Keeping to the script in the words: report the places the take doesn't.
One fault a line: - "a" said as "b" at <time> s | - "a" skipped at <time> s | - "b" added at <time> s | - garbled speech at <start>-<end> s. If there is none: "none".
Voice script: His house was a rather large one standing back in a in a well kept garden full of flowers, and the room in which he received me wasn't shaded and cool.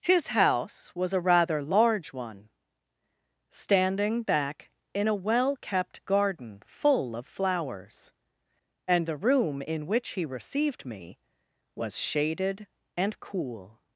- "in a" skipped at 5.2 s
- "wasn't" said as "was" at 11.7 s